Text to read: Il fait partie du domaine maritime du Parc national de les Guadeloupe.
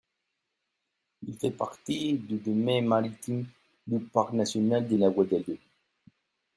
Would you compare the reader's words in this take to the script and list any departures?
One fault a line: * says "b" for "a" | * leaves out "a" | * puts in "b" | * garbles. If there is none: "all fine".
* says "la" for "les"